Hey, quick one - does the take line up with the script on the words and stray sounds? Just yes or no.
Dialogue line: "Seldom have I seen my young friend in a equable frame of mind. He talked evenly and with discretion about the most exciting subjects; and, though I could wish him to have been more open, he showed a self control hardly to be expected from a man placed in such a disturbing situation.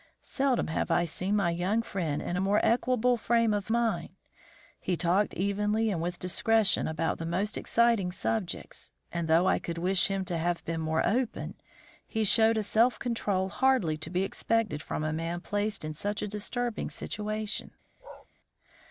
no